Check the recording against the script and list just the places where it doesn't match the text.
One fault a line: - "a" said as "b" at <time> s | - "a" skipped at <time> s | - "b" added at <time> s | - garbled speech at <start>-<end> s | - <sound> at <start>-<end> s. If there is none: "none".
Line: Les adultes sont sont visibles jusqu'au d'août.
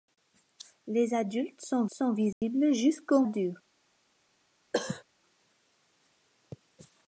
- dropout at 2.3-2.4 s
- cough at 4.7-5.0 s